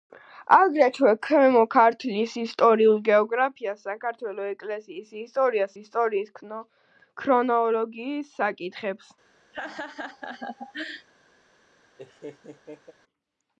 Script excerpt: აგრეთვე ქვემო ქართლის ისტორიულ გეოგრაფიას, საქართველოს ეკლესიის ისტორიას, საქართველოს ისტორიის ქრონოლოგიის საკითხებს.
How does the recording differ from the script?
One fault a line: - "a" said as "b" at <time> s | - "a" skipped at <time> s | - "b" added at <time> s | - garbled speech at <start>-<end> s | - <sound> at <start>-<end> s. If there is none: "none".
- "საქართველოს" skipped at 5.8 s
- laugh at 9.5-11.1 s
- laugh at 12.0-12.9 s